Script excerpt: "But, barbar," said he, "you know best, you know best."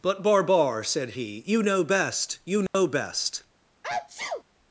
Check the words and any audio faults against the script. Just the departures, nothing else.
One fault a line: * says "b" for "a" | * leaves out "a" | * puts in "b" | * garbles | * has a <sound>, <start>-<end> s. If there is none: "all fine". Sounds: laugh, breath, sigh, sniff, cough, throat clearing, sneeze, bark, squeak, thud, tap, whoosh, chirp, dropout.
* has a dropout, 2.7-2.7 s
* has a sneeze, 3.8-4.4 s